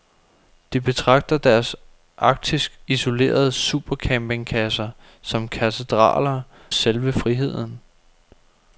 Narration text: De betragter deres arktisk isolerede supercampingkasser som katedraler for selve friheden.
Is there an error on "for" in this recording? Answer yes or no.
yes